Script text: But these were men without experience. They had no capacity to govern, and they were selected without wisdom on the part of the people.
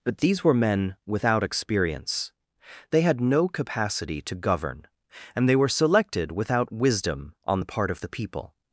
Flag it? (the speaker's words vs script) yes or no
no